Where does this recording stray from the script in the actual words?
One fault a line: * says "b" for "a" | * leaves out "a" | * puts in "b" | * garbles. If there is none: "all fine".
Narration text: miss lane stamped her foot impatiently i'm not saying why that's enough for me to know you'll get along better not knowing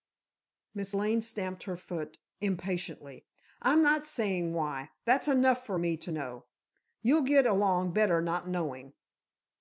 all fine